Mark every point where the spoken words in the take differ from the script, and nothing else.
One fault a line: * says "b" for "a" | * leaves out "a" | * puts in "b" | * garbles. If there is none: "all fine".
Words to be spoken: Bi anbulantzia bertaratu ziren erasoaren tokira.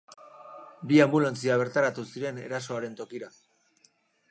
all fine